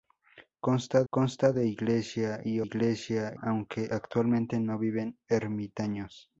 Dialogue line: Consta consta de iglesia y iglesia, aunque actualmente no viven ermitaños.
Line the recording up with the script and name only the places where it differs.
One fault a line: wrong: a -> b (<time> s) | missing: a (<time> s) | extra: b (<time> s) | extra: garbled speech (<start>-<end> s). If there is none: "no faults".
no faults